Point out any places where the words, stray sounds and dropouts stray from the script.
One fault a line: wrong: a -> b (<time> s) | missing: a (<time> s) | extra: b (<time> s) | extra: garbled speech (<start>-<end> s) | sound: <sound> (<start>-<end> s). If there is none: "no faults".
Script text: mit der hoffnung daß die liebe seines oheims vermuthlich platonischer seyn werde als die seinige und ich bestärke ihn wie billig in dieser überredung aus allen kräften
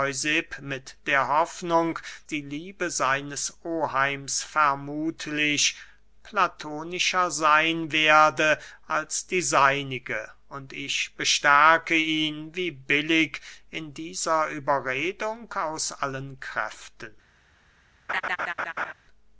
missing: daß (2.0 s)
sound: laugh (18.1-18.9 s)